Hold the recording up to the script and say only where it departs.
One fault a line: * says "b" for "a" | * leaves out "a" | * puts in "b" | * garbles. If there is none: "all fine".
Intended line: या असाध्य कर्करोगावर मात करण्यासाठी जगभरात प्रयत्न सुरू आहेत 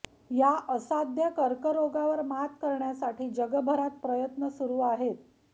all fine